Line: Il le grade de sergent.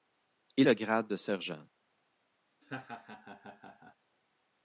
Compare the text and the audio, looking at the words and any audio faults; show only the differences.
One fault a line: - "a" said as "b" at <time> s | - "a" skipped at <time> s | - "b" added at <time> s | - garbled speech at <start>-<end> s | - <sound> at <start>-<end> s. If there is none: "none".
- laugh at 2.6-4.0 s